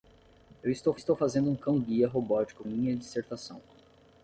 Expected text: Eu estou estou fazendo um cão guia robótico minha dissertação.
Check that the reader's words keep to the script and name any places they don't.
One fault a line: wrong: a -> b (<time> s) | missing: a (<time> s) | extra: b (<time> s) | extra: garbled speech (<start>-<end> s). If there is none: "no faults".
no faults